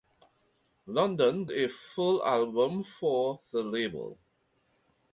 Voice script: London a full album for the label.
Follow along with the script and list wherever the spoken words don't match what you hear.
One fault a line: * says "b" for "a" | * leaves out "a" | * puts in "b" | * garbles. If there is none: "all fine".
all fine